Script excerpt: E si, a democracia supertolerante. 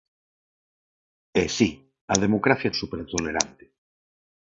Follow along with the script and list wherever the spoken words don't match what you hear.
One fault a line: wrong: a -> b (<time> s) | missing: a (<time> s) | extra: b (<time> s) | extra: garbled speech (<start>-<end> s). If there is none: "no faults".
no faults